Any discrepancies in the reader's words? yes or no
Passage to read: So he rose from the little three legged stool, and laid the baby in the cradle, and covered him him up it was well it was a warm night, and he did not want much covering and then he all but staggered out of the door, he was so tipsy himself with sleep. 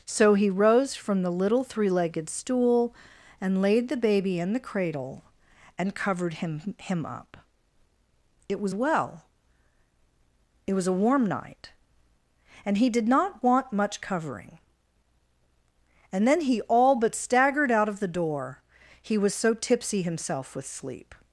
no